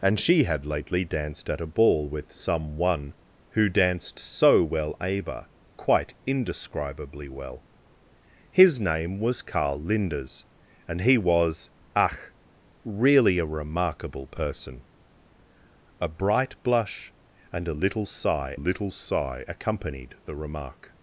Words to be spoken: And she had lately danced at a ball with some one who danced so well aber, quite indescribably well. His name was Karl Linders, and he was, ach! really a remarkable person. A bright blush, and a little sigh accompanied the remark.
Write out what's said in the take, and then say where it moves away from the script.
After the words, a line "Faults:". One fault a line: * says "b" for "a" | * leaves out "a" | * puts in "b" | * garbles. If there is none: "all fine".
And she had lately danced at a ball with some one who danced so well aber, quite indescribably well. His name was Karl Linders, and he was, ach! really a remarkable person. A bright blush, and a little sigh little sigh accompanied the remark.
Faults:
* puts in "little sigh"